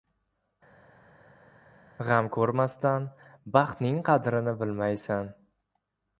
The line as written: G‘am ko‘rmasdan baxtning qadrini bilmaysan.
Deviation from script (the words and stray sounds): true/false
false